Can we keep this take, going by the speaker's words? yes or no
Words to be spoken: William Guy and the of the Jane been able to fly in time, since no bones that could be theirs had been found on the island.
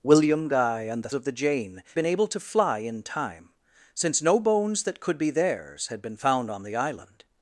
yes